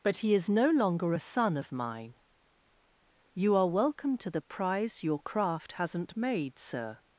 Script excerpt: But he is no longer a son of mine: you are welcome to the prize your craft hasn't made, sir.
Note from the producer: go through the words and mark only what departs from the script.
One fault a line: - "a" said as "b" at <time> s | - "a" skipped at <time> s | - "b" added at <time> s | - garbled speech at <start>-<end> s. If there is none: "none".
none